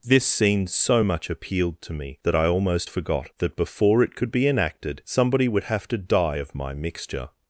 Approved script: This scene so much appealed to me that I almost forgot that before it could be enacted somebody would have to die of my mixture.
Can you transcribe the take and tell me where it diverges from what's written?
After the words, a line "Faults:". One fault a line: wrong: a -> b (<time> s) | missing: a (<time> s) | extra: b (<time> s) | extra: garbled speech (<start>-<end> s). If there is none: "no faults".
This scene so much appealed to me that I almost forgot that before it could be enacted somebody would have to die of my mixture.
Faults:
no faults